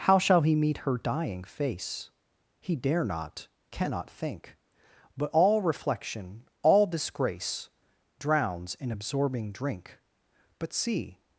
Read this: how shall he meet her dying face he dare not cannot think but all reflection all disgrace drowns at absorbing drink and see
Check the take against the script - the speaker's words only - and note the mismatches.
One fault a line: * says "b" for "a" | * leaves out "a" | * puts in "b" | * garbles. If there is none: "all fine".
* says "in" for "at"
* says "but" for "and"